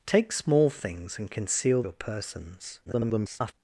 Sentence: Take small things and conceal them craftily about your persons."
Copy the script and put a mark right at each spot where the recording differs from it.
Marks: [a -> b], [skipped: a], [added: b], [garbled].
Take small things and conceal [skipped: them craftily about] your persons." [garbled]